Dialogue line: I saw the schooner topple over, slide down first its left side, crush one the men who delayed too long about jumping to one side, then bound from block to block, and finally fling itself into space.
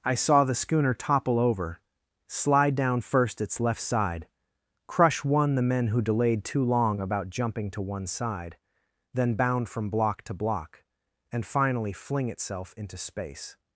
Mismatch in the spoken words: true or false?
false